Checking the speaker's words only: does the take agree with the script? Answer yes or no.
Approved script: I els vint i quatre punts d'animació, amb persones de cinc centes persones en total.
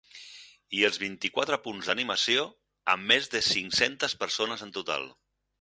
no